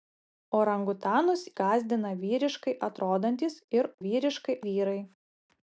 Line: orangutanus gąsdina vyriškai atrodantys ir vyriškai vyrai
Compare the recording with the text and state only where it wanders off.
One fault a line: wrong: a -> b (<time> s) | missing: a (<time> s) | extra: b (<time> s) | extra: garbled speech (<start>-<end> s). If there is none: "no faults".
no faults